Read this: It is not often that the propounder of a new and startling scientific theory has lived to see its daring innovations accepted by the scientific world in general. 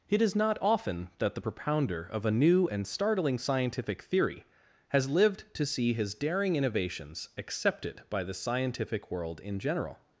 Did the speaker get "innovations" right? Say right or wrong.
right